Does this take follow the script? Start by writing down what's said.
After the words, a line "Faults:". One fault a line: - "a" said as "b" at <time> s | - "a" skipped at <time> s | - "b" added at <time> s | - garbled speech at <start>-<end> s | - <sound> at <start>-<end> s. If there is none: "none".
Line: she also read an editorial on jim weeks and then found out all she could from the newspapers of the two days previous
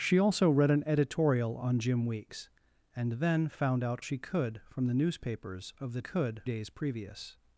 she also read an editorial on jim weeks and then found out she could from the newspapers of the could days previous
Faults:
- "all" skipped at 4.0 s
- "two" said as "could" at 6.0 s